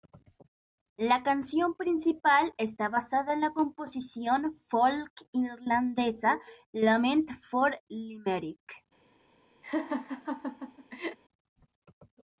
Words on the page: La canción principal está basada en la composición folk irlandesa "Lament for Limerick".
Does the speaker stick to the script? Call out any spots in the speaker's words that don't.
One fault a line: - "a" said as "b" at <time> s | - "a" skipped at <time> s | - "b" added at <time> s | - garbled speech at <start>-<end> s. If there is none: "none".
none